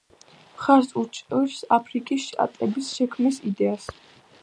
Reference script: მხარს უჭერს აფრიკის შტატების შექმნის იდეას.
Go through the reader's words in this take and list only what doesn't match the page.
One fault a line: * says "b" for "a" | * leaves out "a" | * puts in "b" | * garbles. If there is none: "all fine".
all fine